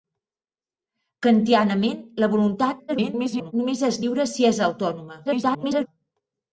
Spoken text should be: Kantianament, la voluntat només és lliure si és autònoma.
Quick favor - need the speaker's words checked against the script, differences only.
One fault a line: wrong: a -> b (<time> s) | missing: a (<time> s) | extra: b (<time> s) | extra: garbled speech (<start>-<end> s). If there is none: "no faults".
extra: garbled speech (2.9-3.5 s)
extra: garbled speech (5.3-5.9 s)